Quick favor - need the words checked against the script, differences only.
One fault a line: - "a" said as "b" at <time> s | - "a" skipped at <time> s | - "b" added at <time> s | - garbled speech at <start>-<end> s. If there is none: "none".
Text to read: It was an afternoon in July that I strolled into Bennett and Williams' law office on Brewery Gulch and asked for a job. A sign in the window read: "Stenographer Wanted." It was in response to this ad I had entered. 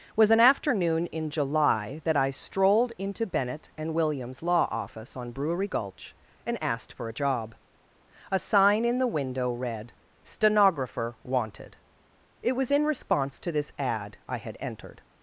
- "It" skipped at 0.1 s